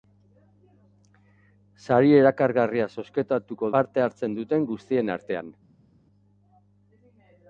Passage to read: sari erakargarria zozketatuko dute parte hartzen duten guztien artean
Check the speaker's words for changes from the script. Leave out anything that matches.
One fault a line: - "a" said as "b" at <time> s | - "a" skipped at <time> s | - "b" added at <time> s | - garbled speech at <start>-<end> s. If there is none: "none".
- "dute" skipped at 3.7 s